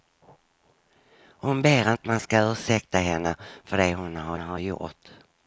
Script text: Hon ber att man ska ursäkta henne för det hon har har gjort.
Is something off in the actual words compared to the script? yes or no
no